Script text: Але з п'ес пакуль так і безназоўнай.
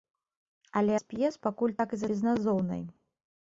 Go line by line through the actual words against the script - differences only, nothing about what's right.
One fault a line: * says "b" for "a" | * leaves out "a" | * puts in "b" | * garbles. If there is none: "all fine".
all fine